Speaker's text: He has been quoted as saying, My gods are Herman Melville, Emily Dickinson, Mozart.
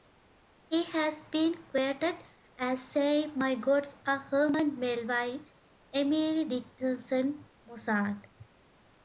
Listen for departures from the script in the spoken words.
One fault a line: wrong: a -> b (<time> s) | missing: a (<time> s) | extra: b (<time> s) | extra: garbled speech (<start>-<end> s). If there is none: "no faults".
no faults